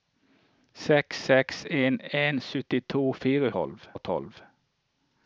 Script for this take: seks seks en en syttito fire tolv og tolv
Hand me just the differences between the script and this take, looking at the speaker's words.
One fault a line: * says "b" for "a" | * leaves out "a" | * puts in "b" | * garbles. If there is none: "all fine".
all fine